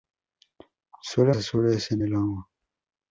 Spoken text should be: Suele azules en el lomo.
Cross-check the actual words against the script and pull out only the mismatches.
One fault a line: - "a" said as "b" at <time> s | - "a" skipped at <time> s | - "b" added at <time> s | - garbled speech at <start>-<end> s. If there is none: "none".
none